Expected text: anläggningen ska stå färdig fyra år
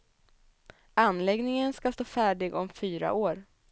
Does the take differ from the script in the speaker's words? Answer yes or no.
yes